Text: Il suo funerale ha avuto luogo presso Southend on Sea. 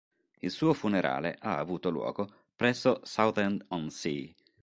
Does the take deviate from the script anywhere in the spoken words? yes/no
no